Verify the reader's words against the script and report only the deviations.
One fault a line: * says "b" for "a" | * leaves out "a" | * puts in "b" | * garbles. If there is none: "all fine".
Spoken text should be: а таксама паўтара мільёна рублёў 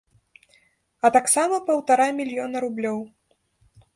all fine